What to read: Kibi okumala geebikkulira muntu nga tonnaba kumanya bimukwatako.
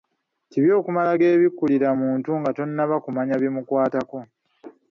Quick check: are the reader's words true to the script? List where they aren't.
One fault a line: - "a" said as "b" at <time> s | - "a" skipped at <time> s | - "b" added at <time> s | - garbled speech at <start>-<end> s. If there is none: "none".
none